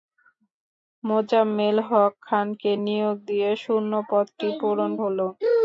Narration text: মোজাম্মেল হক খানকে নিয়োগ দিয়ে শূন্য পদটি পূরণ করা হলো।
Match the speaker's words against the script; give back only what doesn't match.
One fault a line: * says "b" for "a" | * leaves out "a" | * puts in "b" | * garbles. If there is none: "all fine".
* leaves out "করা"